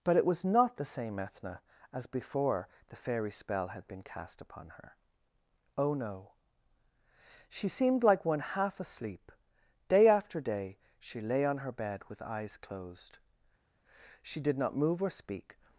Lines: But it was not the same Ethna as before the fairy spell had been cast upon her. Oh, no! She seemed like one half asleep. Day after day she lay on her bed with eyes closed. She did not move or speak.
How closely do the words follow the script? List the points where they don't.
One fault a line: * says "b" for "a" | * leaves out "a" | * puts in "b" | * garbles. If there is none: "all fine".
all fine